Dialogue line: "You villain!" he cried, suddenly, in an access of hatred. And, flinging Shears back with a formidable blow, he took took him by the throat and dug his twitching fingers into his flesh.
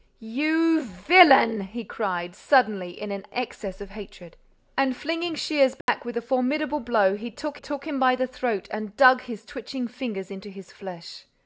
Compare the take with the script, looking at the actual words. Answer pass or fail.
pass